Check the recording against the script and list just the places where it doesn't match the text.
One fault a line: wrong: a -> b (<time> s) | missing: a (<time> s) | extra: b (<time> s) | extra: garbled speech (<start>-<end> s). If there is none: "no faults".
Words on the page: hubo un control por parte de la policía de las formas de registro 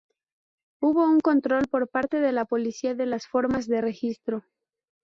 no faults